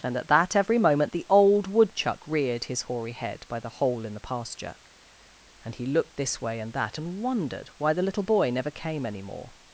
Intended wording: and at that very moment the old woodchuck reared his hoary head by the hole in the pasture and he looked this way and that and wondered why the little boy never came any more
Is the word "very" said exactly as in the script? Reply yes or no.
no